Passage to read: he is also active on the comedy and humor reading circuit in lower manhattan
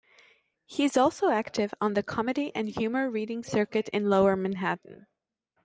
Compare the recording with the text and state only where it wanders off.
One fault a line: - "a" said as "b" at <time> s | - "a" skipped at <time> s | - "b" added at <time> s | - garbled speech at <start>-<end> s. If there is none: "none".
none